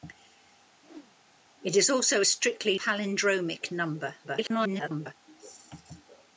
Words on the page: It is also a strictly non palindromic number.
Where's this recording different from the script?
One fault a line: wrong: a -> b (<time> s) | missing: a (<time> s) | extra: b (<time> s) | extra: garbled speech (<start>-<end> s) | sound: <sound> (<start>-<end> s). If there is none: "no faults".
sound: whoosh (0.8-1.2 s)
missing: non (2.8 s)
extra: garbled speech (4.2-5.1 s)